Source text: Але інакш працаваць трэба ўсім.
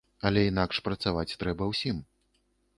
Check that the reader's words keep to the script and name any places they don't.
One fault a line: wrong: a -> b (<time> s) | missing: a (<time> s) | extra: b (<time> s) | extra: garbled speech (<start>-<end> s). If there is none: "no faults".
no faults